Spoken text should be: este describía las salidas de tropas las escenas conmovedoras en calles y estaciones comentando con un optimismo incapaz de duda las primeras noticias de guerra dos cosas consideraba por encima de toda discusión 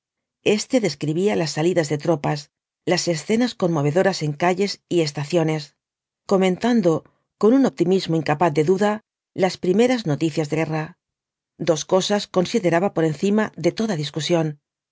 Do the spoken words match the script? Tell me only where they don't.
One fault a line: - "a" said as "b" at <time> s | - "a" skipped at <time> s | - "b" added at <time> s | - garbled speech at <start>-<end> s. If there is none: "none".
none